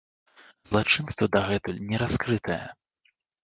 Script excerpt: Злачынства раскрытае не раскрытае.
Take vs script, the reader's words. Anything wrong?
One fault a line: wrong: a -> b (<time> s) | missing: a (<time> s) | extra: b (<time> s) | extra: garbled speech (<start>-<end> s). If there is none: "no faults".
wrong: раскрытае -> дагэтуль (1.4 s)